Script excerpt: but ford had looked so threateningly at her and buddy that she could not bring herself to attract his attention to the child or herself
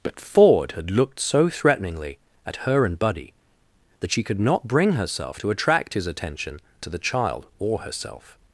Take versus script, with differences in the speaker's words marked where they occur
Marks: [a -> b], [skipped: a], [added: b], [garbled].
but ford had looked so threateningly at her and buddy that she could not bring herself to attract his attention to the child or herself